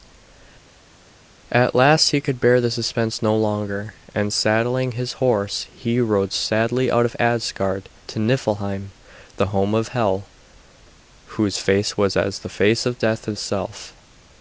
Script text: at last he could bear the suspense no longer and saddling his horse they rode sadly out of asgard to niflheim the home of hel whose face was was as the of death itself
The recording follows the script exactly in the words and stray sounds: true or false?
false